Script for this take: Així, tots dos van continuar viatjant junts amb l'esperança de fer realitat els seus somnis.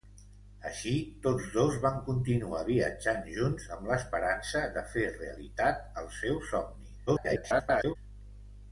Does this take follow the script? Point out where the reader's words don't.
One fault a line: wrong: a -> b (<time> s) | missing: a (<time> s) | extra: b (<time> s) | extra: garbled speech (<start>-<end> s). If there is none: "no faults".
extra: garbled speech (7.1-8.0 s)